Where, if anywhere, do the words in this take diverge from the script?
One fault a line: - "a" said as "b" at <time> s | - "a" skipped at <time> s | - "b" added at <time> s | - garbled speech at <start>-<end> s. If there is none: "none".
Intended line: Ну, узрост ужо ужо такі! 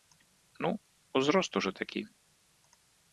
- "ужо" skipped at 1.7 s